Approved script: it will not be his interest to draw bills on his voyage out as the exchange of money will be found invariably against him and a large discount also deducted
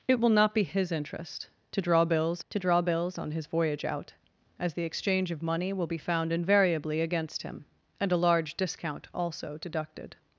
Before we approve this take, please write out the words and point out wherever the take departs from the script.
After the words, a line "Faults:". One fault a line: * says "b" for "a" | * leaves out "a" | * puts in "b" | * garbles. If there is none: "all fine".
it will not be his interest to draw bills to draw bills on his voyage out as the exchange of money will be found invariably against him and a large discount also deducted
Faults:
* puts in "to draw bills"